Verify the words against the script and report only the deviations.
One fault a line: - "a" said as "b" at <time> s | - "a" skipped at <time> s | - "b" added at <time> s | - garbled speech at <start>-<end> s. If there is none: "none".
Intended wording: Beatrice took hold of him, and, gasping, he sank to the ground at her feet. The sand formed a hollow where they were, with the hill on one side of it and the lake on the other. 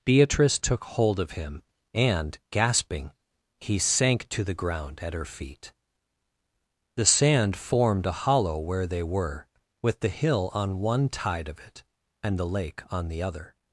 - "side" said as "tide" at 11.1 s